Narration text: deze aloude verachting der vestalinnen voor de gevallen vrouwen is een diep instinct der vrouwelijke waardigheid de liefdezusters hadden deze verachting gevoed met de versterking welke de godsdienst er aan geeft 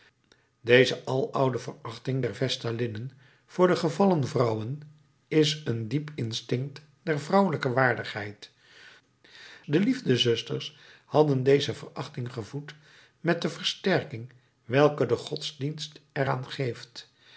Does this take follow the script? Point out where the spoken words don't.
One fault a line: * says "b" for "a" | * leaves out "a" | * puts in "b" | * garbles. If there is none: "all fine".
all fine